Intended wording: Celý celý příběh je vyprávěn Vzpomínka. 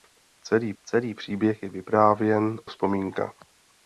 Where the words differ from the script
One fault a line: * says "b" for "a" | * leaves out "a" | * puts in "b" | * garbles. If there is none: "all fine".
all fine